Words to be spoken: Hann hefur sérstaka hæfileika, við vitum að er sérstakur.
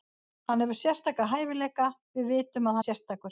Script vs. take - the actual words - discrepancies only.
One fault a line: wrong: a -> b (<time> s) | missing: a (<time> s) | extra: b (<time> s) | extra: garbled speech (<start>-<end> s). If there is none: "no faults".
no faults